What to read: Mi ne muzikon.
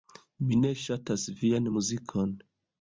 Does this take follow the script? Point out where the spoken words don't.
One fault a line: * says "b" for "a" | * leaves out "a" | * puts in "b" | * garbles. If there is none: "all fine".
* puts in "ŝatas vian"